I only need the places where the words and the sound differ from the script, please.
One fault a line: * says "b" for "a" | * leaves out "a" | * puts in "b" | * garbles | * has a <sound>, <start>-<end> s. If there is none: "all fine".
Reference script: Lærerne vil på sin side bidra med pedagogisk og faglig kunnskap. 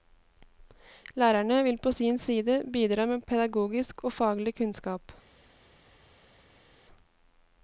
all fine